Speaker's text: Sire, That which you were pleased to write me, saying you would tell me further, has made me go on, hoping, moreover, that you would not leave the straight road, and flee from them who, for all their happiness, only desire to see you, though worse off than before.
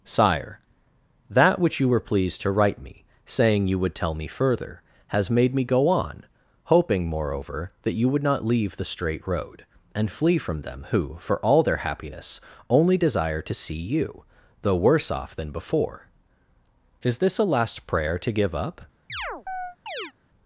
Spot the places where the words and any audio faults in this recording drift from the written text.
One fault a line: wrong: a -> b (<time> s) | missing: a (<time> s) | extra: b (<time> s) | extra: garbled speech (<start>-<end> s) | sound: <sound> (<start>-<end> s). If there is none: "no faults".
extra: Is this a last prayer to give up (17.0 s)
sound: chirp (19.1-20.1 s)